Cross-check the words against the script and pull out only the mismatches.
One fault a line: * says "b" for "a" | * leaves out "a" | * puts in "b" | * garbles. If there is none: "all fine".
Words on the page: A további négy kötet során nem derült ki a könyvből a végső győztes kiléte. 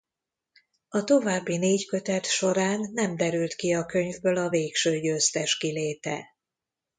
all fine